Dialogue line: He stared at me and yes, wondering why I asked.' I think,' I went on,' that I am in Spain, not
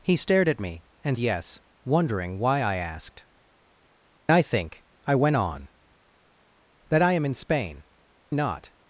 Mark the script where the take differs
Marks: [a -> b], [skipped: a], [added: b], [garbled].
He stared at me and yes, wondering why I asked.' I think,' I went on,' that I am in Spain, not